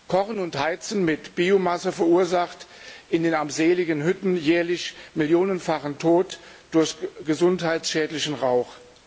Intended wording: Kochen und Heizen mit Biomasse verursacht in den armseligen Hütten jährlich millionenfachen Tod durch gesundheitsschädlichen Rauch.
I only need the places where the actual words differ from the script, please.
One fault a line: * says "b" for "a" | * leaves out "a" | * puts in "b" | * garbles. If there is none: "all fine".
all fine